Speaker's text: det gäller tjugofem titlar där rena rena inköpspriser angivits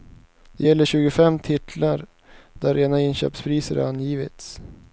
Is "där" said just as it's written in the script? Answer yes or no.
yes